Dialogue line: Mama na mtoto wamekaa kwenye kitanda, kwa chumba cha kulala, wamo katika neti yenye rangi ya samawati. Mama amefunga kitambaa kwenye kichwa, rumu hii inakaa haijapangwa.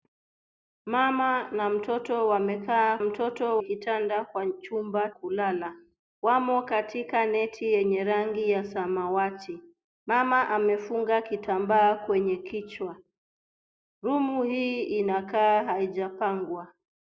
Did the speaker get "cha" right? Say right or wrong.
wrong